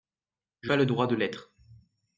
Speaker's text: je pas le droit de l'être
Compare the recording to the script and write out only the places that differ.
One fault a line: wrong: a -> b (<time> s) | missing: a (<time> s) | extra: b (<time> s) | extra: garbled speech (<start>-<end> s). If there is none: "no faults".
no faults